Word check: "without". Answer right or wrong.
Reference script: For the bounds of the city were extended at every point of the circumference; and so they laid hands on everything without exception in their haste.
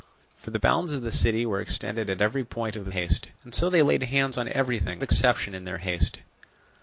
wrong